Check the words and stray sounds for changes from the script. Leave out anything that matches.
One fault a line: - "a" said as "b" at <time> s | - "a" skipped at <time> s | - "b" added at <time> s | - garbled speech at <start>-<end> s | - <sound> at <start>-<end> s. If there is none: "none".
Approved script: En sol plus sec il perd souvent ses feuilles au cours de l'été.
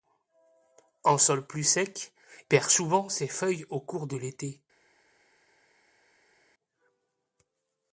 - "il" skipped at 2.1 s